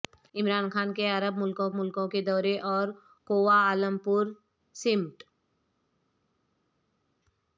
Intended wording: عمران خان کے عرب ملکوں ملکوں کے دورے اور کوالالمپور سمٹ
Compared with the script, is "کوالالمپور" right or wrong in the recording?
right